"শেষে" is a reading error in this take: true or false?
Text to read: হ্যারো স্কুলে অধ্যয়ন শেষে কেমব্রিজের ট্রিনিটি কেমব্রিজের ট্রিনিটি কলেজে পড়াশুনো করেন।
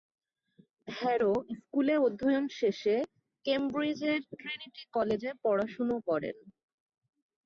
false